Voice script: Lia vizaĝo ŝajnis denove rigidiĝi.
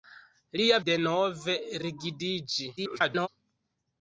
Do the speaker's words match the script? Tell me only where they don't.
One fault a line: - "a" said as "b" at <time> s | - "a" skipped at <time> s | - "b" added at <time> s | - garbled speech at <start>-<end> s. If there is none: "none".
- "vizaĝo ŝajnis" skipped at 0.8 s
- garbled speech at 2.8-3.3 s